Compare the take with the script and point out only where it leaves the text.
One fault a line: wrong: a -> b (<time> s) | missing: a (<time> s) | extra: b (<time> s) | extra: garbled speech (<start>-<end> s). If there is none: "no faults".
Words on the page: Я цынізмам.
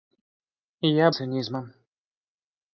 no faults